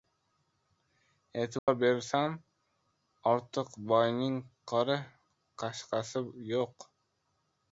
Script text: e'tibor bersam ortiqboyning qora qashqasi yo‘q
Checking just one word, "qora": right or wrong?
right